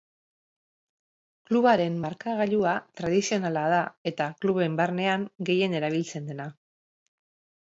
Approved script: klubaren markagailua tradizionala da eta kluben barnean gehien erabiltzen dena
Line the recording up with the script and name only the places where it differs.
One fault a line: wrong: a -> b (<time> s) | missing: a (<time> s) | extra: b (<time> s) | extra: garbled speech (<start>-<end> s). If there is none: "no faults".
no faults